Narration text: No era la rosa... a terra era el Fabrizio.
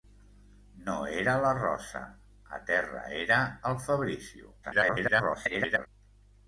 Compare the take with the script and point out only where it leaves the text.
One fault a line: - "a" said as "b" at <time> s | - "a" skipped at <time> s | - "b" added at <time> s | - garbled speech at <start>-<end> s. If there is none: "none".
- garbled speech at 4.6-5.9 s